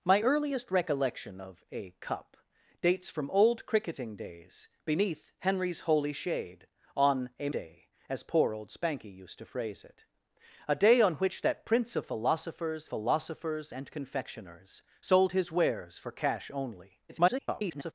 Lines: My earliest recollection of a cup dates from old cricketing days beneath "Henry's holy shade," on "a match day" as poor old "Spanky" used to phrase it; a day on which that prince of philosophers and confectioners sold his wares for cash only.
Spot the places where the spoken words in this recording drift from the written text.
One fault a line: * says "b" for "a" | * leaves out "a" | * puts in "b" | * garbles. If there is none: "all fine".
* leaves out "match"
* puts in "philosophers"
* garbles